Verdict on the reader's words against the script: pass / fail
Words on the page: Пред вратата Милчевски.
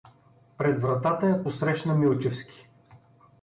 fail